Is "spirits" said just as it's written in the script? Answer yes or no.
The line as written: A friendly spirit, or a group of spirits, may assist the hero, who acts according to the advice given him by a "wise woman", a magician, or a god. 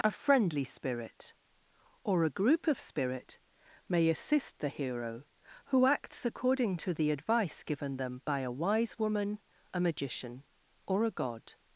no